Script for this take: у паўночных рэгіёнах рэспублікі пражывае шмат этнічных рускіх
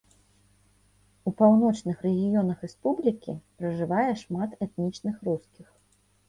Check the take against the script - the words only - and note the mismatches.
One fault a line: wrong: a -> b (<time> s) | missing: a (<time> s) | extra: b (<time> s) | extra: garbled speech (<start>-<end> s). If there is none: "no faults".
no faults